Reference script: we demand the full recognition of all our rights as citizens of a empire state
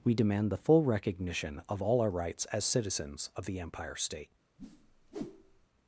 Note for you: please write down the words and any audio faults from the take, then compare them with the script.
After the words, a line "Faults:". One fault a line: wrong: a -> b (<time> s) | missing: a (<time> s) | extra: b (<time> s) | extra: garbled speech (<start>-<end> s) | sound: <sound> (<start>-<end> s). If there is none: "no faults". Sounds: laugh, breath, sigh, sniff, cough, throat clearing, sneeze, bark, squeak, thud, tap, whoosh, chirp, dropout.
we demand the full recognition of all our rights as citizens of the empire state
Faults:
wrong: a -> the (3.5 s)
sound: whoosh (4.6-5.7 s)